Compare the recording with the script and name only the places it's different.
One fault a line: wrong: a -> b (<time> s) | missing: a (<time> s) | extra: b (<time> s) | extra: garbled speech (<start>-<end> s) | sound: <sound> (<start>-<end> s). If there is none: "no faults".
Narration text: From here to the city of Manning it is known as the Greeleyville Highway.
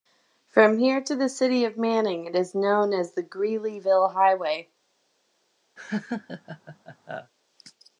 sound: laugh (5.8-7.3 s)